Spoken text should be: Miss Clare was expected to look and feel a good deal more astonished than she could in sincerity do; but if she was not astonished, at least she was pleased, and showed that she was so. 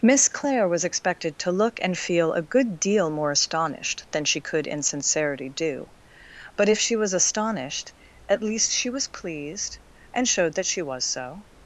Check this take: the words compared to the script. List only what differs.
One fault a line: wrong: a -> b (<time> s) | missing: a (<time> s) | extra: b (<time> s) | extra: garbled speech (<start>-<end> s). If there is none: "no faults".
missing: not (7.1 s)